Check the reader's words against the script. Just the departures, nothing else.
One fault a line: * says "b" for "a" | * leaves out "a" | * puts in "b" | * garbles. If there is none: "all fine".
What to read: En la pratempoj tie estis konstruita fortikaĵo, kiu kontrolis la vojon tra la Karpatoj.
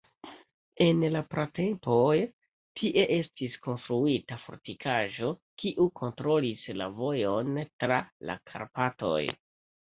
all fine